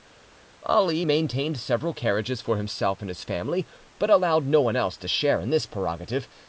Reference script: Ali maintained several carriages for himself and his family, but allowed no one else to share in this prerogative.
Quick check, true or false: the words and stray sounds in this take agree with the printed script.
true